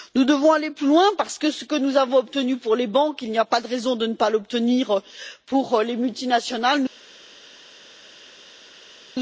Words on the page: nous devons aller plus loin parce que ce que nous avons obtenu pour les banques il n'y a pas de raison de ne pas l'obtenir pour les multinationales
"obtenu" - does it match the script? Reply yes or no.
yes